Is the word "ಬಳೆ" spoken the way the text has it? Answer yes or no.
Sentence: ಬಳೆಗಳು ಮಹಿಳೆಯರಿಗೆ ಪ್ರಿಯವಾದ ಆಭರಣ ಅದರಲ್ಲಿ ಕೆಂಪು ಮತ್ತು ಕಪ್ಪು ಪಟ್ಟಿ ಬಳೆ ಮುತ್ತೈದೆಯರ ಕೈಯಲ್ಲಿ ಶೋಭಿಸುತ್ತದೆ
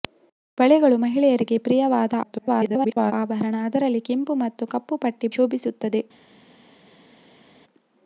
no